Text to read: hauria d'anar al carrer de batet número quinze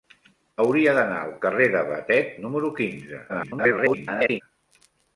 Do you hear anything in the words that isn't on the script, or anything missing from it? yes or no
yes